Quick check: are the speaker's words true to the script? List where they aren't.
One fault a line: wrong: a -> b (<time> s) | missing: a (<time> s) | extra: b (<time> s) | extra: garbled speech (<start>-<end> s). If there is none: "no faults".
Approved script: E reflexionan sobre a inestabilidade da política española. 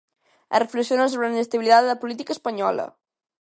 no faults